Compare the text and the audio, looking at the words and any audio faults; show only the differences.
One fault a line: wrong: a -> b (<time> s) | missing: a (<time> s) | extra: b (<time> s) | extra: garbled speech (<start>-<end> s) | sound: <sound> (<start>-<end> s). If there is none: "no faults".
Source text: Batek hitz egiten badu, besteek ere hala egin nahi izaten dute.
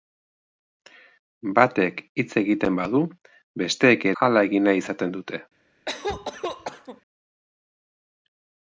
missing: ere (4.1 s)
sound: cough (5.9-7.0 s)